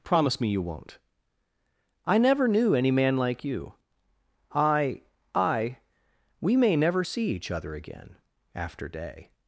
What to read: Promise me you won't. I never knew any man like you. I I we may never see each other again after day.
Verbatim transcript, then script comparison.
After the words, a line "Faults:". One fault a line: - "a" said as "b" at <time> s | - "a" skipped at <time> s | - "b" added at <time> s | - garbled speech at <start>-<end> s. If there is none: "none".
Promise me you won't. I never knew any man like you. I I we may never see each other again after day.
Faults:
none